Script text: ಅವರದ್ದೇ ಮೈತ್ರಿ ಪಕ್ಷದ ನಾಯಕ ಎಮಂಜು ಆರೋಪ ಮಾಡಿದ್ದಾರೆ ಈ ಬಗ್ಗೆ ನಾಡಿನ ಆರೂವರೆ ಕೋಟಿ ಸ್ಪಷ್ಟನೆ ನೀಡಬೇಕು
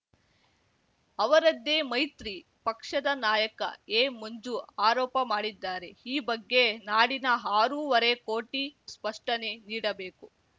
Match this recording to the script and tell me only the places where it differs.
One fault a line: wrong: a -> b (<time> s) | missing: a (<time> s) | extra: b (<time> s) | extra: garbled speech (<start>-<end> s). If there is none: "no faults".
no faults